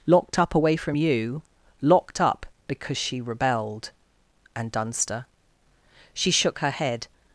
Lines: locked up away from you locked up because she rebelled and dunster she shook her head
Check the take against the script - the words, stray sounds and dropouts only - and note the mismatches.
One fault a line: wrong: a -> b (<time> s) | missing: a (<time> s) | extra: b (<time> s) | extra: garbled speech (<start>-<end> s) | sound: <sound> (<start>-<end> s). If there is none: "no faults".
no faults